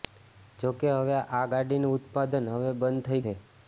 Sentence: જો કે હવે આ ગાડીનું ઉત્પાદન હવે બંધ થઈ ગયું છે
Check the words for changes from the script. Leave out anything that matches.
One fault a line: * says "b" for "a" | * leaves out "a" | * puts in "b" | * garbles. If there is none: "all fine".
* leaves out "ગયું"